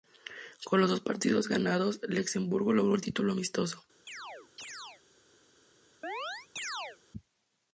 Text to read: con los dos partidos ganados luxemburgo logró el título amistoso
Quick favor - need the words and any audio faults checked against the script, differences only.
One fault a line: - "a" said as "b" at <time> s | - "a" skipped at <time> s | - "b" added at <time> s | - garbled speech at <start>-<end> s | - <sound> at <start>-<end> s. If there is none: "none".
- chirp at 4.1-5.0 s
- chirp at 6.0-7.0 s